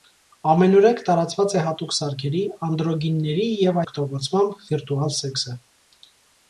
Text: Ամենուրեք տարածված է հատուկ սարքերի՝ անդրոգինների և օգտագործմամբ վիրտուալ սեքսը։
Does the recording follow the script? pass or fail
pass